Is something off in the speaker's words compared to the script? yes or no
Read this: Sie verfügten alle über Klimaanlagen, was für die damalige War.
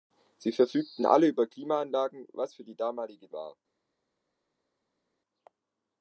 no